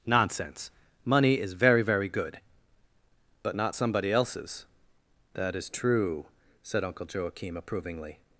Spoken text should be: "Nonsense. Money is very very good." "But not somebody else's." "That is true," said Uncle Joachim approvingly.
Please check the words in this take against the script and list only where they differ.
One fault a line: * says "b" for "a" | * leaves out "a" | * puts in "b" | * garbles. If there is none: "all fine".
all fine